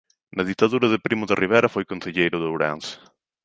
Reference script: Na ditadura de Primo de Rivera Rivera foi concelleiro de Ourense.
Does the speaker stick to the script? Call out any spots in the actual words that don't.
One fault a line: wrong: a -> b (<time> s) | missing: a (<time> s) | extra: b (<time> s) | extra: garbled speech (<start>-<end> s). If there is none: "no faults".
missing: Rivera (1.7 s)